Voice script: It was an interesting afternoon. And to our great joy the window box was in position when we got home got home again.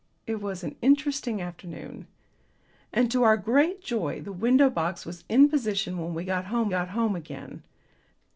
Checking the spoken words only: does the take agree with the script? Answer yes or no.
yes